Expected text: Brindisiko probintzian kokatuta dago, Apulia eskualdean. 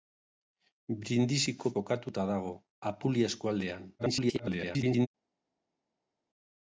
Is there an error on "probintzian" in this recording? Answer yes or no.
yes